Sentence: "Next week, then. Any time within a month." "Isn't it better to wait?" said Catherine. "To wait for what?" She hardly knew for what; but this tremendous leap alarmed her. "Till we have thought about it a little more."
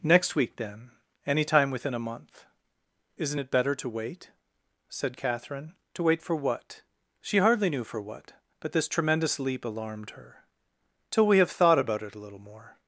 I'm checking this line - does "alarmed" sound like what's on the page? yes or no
yes